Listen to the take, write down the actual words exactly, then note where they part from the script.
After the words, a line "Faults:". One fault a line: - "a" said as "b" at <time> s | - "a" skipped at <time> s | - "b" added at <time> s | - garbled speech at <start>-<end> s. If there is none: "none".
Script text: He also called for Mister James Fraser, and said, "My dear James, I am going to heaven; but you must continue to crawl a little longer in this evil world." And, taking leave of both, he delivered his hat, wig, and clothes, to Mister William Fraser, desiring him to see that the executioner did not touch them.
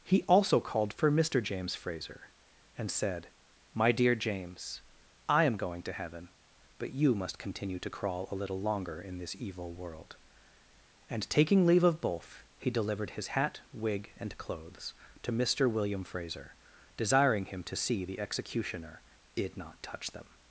He also called for Mister James Fraser, and said, "My dear James, I am going to heaven; but you must continue to crawl a little longer in this evil world." And, taking leave of both, he delivered his hat, wig, and clothes, to Mister William Fraser, desiring him to see the executioner did not touch them.
Faults:
- "that" skipped at 18.0 s